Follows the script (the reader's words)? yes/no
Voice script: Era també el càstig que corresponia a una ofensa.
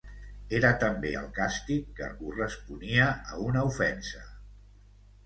yes